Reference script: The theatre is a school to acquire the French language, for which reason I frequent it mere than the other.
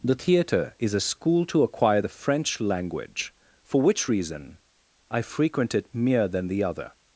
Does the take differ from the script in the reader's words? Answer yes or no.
no